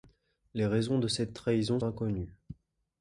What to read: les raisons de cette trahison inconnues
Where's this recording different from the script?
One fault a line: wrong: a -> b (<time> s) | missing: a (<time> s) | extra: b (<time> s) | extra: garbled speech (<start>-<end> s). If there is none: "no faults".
no faults